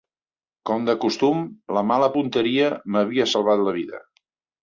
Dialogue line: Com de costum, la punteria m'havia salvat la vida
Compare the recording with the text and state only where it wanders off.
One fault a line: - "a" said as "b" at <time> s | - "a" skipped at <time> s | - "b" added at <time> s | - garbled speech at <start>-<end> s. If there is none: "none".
- "mala" added at 1.9 s